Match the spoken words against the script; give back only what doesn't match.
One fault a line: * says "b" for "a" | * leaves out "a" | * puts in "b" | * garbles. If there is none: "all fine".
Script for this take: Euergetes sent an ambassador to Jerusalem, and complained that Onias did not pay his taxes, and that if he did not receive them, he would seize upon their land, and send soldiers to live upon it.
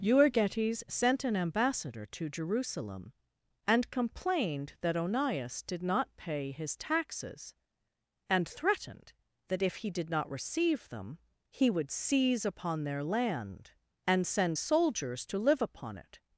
* puts in "threatened"